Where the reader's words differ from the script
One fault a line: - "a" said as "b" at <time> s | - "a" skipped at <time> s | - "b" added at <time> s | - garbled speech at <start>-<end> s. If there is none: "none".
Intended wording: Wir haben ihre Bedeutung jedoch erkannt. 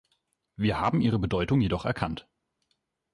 none